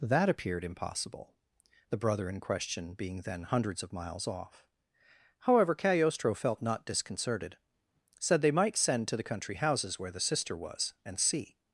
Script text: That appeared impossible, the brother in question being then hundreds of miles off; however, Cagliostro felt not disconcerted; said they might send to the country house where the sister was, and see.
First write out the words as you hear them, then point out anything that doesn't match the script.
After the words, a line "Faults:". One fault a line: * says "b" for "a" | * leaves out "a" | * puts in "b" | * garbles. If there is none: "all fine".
That appeared impossible, the brother in question being then hundreds of miles off; however, Cagliostro felt not disconcerted; said they might send to the country houses where the sister was, and see.
Faults:
* says "houses" for "house"